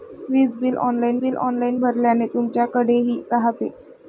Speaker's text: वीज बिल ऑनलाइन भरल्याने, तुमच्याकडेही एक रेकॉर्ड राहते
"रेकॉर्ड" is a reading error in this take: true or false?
true